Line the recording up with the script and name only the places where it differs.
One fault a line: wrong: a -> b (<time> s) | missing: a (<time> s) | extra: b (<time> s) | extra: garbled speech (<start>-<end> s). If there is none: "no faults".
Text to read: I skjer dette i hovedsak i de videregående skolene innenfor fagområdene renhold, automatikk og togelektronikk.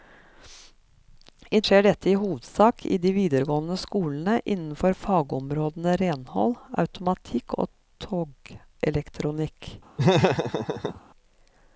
no faults